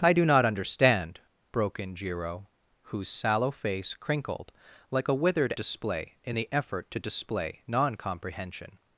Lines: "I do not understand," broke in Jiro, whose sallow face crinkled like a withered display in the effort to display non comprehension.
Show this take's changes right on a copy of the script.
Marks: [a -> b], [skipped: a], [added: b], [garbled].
"I do not understand," broke in Jiro, whose sallow face crinkled like a withered display in the effort to display non comprehension.